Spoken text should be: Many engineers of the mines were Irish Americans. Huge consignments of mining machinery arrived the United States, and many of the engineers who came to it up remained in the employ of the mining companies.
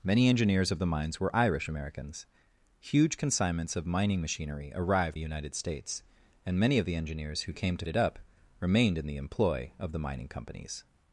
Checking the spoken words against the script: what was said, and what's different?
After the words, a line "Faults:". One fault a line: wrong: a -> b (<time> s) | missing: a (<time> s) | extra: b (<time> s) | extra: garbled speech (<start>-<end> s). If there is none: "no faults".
Many engineers of the mines were Irish Americans. Huge consignments of mining machinery arrived the United States, and many of the engineers who came to it up remained in the employ of the mining companies.
Faults:
no faults